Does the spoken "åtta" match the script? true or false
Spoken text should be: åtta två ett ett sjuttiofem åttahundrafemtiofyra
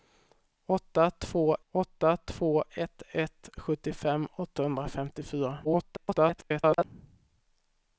true